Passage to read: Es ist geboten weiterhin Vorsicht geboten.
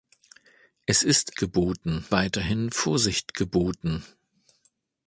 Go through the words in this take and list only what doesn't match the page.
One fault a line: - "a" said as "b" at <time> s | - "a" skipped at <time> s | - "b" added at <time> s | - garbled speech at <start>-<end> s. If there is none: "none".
none